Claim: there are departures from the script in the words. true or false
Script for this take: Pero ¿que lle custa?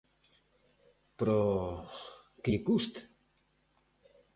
false